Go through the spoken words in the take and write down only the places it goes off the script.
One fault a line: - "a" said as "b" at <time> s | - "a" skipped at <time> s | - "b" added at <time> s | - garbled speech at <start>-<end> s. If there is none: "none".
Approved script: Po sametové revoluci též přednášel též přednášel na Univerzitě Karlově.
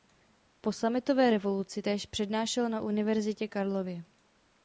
- "též přednášel" skipped at 2.7 s